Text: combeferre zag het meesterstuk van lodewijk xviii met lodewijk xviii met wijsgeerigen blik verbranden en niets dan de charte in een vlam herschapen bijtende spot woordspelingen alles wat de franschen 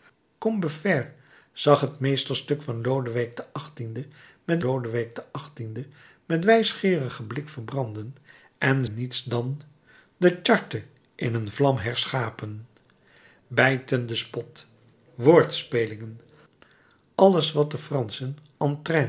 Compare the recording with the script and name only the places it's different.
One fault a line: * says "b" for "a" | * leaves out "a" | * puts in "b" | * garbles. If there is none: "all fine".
all fine